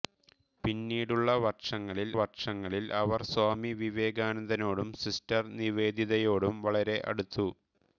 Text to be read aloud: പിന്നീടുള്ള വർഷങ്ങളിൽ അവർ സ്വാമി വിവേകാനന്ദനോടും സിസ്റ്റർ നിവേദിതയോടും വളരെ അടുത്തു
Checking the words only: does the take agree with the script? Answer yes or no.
no